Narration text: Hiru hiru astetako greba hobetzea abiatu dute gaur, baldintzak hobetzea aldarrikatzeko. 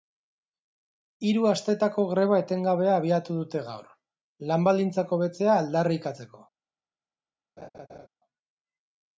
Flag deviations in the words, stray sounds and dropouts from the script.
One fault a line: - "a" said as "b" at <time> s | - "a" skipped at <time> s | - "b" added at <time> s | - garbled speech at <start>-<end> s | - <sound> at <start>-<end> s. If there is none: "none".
- "hiru" skipped at 1.4 s
- "hobetzea" said as "etengabea" at 2.4 s
- "lan" added at 4.5 s
- laugh at 7.6-8.1 s